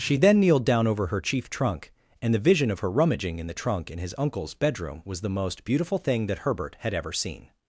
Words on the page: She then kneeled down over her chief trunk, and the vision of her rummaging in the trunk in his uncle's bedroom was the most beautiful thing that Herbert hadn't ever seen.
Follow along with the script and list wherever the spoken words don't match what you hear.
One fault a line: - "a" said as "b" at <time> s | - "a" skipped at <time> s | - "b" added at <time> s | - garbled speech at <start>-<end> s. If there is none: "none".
- "hadn't" said as "had" at 6.8 s